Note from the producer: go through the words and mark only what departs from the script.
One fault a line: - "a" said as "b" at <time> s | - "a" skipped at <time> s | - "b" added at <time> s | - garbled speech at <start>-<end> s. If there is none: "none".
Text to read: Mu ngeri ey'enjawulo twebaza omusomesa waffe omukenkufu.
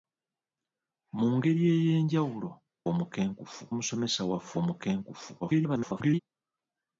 - "twebaza" said as "omukenkufu" at 2.9 s
- garbled speech at 5.4-6.2 s